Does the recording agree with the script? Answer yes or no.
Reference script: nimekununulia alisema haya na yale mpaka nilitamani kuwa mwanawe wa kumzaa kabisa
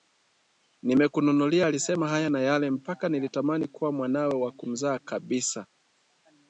yes